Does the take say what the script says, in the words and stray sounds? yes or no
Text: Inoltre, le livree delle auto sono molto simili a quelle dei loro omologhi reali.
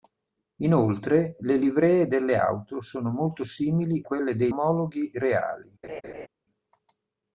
no